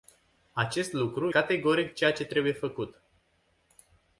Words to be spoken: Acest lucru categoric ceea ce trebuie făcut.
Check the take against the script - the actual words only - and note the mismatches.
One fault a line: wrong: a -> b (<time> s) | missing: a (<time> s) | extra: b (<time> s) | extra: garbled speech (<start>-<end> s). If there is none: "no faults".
no faults